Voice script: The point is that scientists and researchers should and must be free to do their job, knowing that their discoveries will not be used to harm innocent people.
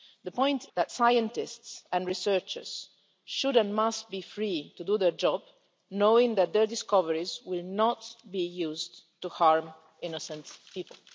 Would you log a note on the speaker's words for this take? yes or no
yes